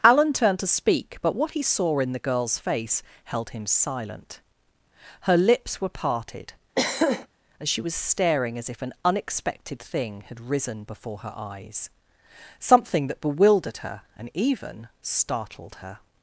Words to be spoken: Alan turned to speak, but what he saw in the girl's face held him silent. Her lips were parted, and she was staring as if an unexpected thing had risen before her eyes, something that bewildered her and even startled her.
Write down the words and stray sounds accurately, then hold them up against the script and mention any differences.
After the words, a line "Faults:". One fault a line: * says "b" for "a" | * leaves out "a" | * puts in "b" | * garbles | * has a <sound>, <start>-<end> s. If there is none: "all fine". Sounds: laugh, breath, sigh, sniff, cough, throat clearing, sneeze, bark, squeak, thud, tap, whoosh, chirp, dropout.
Alan turned to speak, but what he saw in the girl's face held him silent. Her lips were parted, as she was staring as if an unexpected thing had risen before her eyes, something that bewildered her and even startled her.
Faults:
* has a throat clearing, 6.7-7.3 s
* says "as" for "and"